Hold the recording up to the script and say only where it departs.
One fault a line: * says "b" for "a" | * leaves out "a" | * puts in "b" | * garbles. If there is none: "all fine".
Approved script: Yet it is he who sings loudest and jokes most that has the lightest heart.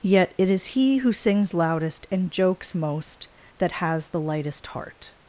all fine